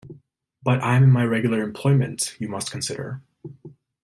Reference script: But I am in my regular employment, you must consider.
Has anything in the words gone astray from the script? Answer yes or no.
no